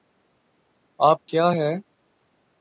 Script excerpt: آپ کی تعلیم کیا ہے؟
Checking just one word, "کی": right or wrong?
wrong